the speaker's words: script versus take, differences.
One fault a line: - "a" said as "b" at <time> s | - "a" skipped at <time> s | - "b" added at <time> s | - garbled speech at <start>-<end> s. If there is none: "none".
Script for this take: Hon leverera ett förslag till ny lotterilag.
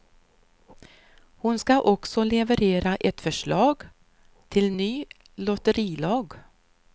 - "ska också" added at 1.6 s